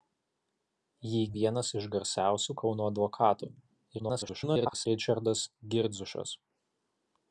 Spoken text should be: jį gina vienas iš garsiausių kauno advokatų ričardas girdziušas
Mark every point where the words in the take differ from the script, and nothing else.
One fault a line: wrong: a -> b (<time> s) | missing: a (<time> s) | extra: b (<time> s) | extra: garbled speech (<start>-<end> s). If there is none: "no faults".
missing: gina (1.2 s)
extra: garbled speech (4.0-4.9 s)